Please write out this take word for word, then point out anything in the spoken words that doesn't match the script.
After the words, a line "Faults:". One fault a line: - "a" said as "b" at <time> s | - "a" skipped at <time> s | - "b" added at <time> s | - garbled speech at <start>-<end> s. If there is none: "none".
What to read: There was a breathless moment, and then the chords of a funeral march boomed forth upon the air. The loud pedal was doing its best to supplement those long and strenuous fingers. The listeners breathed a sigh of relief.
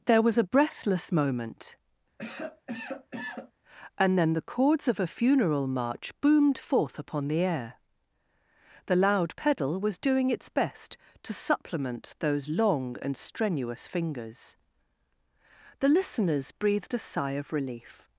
There was a breathless moment, and then the chords of a funeral march boomed forth upon the air. The loud pedal was doing its best to supplement those long and strenuous fingers. The listeners breathed a sigh of relief.
Faults:
none